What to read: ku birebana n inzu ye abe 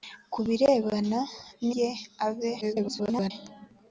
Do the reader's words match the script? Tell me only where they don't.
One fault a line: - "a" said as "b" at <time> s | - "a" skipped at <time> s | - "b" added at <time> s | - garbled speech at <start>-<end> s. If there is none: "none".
- "inzu" skipped at 1.7 s
- garbled speech at 2.6-3.3 s